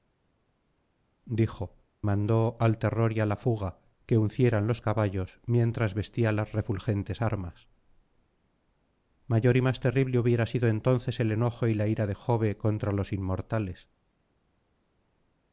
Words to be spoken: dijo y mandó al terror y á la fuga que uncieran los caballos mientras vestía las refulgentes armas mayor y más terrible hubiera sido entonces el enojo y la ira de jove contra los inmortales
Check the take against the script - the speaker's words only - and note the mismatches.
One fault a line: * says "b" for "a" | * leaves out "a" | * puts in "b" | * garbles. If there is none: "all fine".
* leaves out "y"